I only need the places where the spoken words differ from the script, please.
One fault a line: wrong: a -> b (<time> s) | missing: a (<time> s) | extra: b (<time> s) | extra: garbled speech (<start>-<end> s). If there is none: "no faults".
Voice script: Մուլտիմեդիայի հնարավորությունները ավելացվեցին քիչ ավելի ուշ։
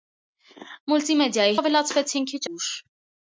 missing: հնարավորությունները (1.5 s)
missing: ավելի (2.4 s)